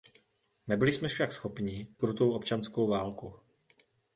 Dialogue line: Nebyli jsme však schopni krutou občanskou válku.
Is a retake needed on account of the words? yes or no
no